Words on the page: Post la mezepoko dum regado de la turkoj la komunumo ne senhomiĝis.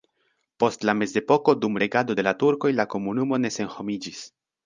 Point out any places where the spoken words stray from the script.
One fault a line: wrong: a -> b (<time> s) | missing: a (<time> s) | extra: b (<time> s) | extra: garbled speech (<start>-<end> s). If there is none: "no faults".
no faults